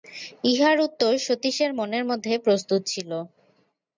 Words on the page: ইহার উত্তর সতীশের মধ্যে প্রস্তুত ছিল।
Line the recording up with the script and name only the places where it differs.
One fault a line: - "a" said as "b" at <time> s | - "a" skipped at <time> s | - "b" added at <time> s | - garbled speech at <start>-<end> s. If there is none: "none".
- "মনের" added at 1.8 s